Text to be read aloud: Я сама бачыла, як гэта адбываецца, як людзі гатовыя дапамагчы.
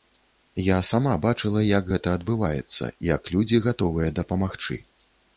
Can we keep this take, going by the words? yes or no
yes